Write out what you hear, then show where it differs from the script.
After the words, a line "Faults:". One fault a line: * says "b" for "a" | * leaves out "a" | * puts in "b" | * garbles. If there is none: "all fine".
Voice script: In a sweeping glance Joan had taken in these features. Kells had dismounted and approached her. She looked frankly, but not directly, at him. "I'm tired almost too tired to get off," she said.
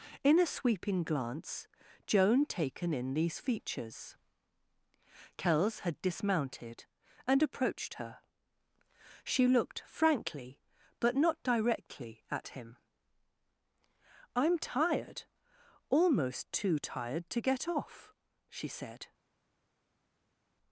In a sweeping glance Joan taken in these features. Kells had dismounted and approached her. She looked frankly, but not directly, at him. "I'm tired almost too tired to get off," she said.
Faults:
* leaves out "had"